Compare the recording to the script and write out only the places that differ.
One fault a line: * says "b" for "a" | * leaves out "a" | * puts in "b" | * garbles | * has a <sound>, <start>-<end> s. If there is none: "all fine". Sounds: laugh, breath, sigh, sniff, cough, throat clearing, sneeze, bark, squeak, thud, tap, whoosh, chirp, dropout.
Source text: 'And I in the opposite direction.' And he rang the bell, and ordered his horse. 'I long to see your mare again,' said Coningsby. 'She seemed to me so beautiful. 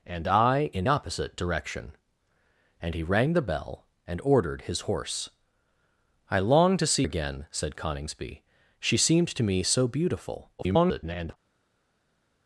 * leaves out "the"
* leaves out "your mare"
* garbles